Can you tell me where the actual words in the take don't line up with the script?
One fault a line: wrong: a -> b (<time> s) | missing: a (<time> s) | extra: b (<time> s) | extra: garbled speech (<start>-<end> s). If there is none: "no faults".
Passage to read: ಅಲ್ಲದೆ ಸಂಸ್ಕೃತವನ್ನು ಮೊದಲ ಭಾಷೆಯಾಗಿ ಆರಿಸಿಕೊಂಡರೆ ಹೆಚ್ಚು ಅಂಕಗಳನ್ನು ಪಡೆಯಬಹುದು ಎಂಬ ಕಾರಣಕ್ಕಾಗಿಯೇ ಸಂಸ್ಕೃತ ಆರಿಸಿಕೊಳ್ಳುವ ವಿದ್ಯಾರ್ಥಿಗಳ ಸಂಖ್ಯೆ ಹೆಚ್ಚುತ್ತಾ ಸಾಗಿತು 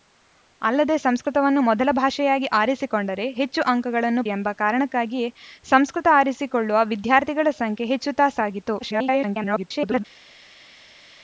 missing: ಪಡೆಯಬಹುದು (4.2 s)
extra: garbled speech (8.8-10.0 s)